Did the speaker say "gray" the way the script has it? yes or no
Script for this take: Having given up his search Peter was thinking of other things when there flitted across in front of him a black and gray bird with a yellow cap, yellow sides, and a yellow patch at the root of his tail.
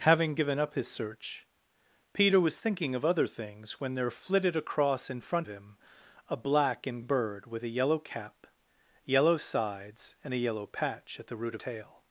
no